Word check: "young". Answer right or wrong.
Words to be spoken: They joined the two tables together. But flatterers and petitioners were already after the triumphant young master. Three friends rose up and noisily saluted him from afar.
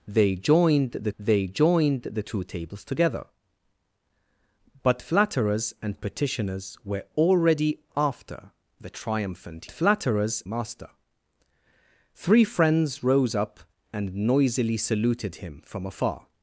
wrong